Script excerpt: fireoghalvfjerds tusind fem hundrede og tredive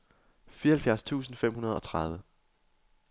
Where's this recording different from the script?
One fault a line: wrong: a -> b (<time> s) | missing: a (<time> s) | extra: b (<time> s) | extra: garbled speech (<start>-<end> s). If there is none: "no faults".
no faults